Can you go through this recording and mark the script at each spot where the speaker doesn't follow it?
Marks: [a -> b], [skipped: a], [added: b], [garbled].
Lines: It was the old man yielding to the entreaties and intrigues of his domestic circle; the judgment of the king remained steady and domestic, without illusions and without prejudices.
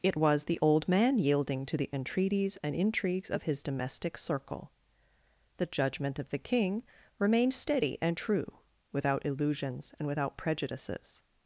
It was the old man yielding to the entreaties and intrigues of his domestic circle; the judgment of the king remained steady and [domestic, -> true] without illusions and without prejudices.